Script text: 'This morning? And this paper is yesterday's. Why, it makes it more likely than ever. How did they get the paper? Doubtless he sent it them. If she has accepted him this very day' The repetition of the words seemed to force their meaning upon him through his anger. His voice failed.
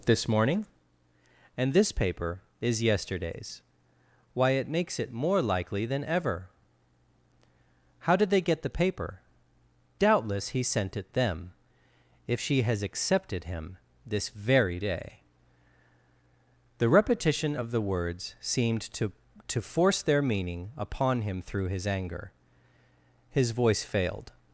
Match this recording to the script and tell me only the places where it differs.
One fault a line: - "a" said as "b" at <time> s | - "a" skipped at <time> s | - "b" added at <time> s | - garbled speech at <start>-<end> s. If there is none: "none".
- "to" added at 19.5 s